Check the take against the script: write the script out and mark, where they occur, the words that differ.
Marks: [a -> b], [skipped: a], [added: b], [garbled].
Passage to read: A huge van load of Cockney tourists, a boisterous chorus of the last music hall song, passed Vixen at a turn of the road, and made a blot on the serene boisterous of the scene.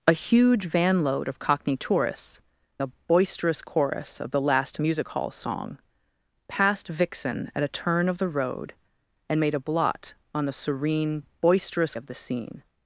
A huge van load of Cockney tourists, a boisterous chorus of the last music hall song, passed Vixen at a turn of the road, and made a blot on the serene boisterous of the scene.